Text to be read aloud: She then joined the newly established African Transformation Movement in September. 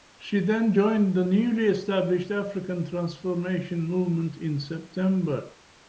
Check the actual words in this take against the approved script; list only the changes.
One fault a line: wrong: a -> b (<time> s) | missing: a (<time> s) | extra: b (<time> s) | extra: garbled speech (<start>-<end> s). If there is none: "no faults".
no faults